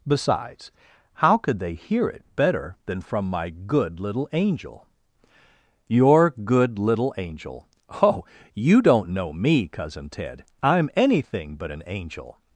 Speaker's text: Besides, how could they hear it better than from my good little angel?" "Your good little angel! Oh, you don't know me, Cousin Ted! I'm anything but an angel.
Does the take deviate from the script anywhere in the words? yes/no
no